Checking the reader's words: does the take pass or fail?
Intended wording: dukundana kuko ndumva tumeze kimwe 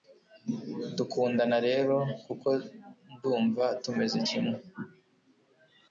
fail